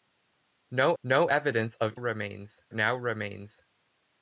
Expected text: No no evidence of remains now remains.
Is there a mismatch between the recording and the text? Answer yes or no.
no